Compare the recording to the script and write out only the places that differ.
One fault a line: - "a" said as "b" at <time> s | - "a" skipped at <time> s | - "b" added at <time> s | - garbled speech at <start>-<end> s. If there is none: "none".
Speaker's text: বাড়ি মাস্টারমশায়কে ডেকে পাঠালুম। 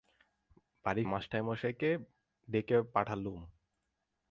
none